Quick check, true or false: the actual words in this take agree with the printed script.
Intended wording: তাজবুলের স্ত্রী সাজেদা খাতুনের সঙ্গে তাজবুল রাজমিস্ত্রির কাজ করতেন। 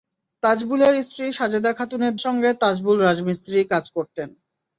true